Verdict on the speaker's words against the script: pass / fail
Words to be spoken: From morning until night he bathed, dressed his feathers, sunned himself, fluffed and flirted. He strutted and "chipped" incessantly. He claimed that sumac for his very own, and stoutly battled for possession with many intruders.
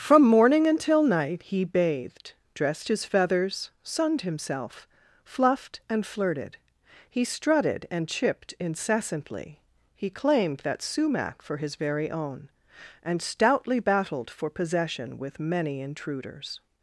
pass